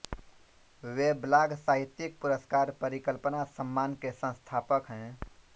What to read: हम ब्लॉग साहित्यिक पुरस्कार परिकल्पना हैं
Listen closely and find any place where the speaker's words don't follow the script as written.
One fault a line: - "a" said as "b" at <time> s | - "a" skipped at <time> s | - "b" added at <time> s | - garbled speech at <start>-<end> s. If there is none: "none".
- "हम" said as "वे" at 0.8 s
- "सम्मान के संस्थापक" added at 3.5 s